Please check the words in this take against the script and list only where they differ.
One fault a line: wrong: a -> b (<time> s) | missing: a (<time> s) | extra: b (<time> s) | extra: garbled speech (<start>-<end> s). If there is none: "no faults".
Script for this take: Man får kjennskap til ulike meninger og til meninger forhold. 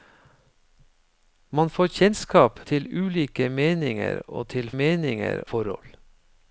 no faults